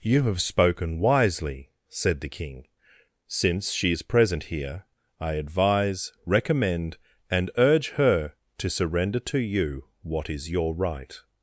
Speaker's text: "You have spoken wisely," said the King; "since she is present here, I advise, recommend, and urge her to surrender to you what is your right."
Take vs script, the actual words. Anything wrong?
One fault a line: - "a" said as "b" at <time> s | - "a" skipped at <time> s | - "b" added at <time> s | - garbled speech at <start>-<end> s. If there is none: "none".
none